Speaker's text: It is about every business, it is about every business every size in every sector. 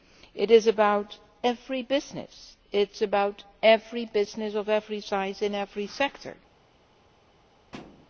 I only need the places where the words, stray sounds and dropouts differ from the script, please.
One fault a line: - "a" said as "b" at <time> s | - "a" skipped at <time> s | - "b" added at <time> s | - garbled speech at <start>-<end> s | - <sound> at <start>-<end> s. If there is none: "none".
- "of" added at 4.5 s
- thud at 7.7-8.1 s